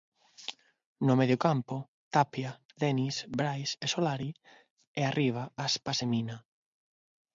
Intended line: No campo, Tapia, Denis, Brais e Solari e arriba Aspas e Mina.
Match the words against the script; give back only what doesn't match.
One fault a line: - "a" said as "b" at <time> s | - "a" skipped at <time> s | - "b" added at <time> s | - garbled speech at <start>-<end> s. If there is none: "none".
- "medio" added at 1.2 s